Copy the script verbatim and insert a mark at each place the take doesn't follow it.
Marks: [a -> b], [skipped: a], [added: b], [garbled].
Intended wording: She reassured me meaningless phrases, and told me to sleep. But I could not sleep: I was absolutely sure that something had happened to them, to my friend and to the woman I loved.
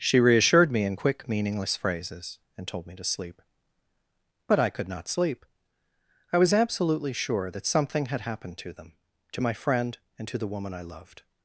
She reassured me [added: in quick] meaningless phrases, and told me to sleep. But I could not sleep: I was absolutely sure that something had happened to them, to my friend and to the woman I loved.